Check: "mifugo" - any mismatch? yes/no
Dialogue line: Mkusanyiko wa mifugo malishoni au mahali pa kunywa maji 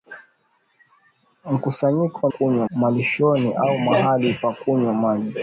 yes